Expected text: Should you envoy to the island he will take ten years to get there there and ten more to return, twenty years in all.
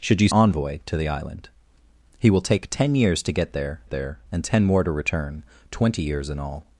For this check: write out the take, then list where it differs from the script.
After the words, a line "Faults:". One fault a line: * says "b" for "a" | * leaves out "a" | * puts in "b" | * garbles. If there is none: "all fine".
Should you envoy to the island he will take ten years to get there there and ten more to return, twenty years in all.
Faults:
all fine